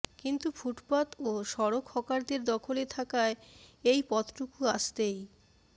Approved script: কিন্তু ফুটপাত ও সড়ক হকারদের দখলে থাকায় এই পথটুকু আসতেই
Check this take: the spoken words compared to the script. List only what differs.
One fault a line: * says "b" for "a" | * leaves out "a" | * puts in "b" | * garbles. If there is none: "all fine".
all fine